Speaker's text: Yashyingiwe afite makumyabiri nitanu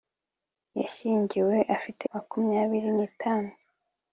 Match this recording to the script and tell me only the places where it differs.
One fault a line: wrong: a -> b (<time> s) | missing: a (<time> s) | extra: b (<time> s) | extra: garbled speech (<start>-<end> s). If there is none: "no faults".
no faults